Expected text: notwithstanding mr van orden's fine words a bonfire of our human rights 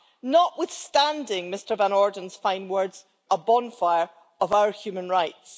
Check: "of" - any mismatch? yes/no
no